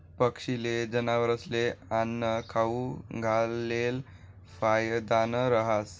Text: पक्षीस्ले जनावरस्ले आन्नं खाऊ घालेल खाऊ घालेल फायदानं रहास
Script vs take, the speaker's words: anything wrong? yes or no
yes